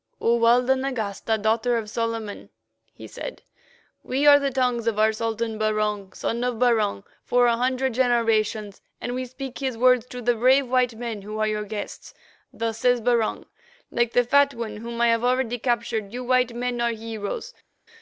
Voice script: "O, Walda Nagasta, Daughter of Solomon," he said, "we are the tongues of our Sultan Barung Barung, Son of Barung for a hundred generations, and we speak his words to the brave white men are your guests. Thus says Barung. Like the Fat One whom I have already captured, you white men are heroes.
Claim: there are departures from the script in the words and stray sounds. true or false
true